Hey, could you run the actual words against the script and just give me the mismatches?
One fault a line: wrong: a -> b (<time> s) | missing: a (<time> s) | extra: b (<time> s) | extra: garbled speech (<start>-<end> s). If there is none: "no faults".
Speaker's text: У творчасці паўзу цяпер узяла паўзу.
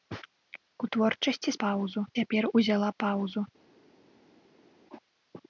no faults